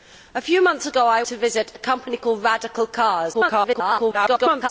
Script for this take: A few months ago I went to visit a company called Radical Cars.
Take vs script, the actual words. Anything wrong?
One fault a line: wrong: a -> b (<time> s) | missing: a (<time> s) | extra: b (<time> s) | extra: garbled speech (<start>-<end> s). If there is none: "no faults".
missing: went (1.2 s)
extra: garbled speech (3.3-4.7 s)